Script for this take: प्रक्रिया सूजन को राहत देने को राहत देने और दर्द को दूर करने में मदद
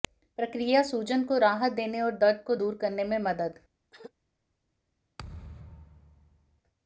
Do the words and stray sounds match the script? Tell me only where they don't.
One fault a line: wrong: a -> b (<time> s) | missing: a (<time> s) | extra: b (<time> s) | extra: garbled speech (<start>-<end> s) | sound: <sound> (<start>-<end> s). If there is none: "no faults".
missing: को राहत देने (2.0 s)
sound: throat clearing (3.9-4.1 s)
sound: thud (5.2-6.6 s)